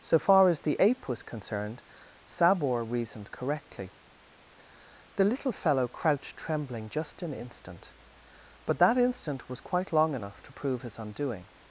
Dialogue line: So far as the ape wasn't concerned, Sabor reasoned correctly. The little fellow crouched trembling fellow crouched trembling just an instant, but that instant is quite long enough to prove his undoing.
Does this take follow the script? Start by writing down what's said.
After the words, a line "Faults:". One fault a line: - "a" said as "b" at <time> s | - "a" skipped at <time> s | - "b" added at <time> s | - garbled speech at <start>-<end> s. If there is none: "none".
So far as the ape was concerned, Sabor reasoned correctly. The little fellow crouched trembling just an instant, but that instant was quite long enough to prove his undoing.
Faults:
- "wasn't" said as "was" at 1.1 s
- "fellow crouched trembling" skipped at 6.9 s
- "is" said as "was" at 9.5 s